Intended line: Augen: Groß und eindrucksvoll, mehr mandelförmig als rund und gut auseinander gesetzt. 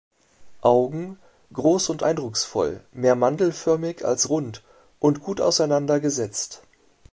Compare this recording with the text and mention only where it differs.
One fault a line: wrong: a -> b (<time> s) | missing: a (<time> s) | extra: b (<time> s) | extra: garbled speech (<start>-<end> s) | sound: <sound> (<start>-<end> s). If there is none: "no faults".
no faults